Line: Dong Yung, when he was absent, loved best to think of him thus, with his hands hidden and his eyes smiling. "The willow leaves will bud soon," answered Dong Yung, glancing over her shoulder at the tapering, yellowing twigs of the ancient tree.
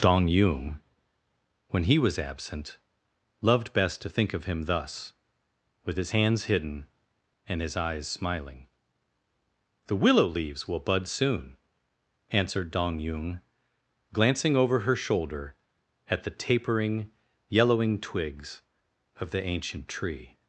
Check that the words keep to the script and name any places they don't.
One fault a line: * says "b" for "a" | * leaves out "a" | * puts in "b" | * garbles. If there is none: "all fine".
all fine